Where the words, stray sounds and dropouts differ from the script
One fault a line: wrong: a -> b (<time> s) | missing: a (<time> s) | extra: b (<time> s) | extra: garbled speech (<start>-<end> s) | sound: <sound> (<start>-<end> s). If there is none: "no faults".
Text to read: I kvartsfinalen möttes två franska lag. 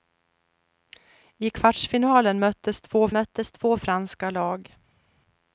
extra: möttes två (3.1 s)